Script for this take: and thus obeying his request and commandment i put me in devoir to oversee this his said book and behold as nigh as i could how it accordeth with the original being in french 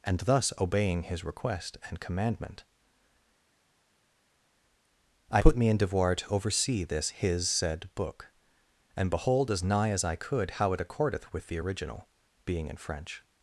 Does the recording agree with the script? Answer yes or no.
yes